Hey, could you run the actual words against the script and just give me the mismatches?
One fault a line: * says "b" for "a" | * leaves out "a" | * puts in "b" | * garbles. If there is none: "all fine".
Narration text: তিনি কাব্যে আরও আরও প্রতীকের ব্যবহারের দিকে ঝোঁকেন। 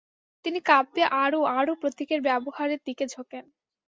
all fine